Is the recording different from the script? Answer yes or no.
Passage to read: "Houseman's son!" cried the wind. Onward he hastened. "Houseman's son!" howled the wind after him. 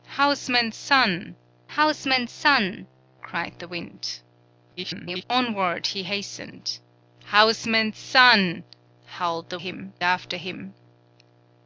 yes